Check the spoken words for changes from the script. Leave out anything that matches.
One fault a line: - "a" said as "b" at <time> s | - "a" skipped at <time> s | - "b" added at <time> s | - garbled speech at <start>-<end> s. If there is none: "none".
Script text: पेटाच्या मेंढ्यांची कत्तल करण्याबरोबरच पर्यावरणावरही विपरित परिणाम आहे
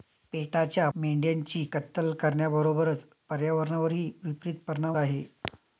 none